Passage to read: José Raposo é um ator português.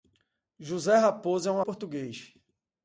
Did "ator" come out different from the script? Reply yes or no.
yes